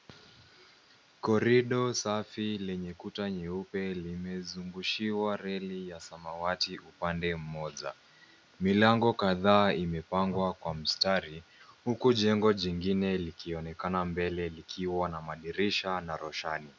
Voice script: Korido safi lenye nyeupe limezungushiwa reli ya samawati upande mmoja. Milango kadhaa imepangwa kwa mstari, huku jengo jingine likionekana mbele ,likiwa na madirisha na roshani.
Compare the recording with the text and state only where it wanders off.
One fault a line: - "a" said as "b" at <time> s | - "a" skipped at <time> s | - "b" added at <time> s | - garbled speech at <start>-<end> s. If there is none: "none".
- "kuta" added at 2.9 s